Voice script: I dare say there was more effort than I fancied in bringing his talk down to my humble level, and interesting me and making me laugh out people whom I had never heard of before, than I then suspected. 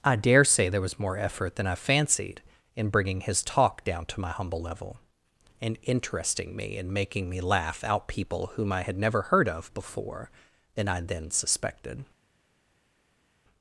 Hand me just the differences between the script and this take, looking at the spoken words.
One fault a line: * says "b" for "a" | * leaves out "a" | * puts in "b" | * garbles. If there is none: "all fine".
all fine